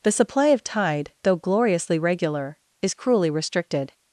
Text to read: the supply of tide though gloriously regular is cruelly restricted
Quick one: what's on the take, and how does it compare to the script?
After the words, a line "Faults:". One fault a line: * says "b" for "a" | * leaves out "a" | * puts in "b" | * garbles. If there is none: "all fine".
the supply of tide though gloriously regular is cruelly restricted
Faults:
all fine